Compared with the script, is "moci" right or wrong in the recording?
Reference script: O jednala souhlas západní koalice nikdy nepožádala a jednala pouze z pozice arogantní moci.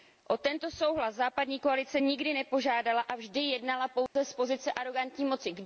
right